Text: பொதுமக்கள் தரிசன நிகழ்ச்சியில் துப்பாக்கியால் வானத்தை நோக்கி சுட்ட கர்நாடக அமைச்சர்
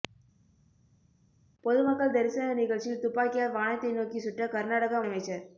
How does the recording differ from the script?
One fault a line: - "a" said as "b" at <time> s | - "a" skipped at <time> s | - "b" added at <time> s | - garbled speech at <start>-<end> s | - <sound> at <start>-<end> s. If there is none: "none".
none